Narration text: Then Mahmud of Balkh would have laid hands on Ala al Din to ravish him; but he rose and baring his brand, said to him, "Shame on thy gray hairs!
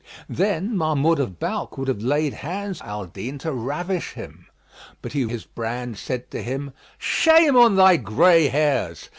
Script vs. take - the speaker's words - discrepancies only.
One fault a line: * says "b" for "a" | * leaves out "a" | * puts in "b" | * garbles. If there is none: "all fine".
* leaves out "on Ala"
* leaves out "rose and baring"